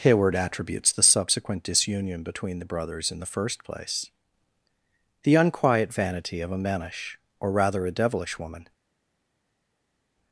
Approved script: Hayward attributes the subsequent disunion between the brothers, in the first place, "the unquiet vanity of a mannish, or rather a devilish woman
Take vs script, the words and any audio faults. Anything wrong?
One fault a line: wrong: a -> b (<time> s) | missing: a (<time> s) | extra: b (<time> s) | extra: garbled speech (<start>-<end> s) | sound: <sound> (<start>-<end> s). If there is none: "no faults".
no faults